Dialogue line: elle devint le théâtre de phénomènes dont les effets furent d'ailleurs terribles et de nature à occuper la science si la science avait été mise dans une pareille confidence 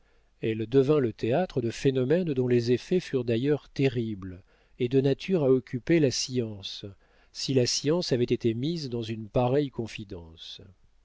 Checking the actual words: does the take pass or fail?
pass